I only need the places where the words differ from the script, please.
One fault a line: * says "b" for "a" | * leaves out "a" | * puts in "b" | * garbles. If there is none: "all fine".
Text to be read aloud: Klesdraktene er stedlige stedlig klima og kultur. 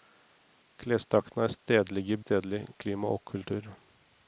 all fine